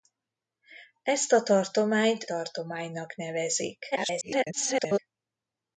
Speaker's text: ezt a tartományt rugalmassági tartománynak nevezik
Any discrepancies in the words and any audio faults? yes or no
yes